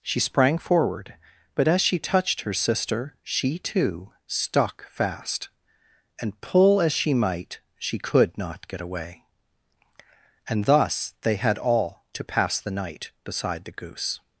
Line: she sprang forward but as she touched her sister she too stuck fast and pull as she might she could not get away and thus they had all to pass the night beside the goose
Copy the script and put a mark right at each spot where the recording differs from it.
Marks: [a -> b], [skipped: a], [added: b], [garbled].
she sprang forward but as she touched her sister she too stuck fast and pull as she might she could not get away and thus they had all to pass the night beside the goose